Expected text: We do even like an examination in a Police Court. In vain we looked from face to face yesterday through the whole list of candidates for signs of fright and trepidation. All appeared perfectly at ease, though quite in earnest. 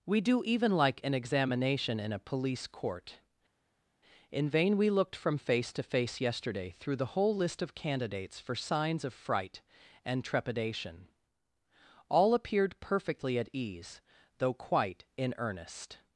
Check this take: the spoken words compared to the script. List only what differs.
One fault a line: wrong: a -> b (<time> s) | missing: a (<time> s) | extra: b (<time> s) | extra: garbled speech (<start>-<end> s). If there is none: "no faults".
no faults